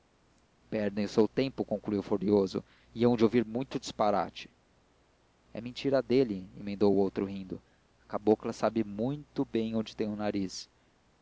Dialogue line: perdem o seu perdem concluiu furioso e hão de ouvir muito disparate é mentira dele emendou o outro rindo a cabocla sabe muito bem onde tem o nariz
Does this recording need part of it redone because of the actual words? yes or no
yes